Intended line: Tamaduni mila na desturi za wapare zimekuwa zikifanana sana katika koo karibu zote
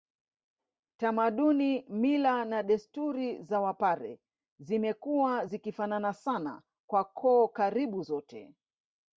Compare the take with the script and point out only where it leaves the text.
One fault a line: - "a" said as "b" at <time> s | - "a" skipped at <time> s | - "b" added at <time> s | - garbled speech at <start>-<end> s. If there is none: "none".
- "katika" said as "kwa" at 6.9 s